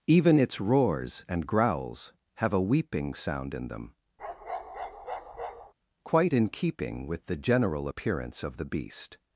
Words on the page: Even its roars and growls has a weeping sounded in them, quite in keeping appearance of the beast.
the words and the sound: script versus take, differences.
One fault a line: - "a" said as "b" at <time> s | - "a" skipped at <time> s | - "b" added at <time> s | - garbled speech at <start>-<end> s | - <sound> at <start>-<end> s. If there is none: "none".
- "has" said as "have" at 2.4 s
- "sounded" said as "sound" at 3.1 s
- bark at 4.2-5.7 s
- "with the general" added at 7.1 s